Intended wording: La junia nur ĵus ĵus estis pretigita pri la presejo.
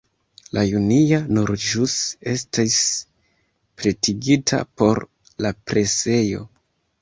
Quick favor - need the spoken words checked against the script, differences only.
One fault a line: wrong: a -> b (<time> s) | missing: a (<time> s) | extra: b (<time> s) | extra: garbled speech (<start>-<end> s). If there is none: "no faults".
missing: ĵus (1.9 s)
wrong: pri -> por (4.8 s)